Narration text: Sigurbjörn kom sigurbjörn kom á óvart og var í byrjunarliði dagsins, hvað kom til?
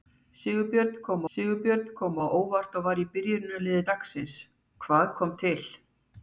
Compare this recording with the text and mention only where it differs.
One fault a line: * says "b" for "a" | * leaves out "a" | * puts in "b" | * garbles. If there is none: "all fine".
all fine